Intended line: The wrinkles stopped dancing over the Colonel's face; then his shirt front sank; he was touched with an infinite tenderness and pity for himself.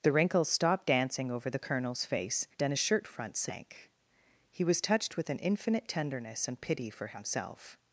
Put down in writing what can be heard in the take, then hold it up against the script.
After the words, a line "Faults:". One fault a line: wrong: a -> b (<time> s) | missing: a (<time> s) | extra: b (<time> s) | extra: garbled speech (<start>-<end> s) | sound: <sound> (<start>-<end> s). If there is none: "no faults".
The wrinkles stopped dancing over the Colonel's face; then his shirt front sank; he was touched with an infinite tenderness and pity for himself.
Faults:
no faults